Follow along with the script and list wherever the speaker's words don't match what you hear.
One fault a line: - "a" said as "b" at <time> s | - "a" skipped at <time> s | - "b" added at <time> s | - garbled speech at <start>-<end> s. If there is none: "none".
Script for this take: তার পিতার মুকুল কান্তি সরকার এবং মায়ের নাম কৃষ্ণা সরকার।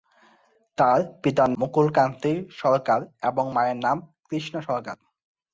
none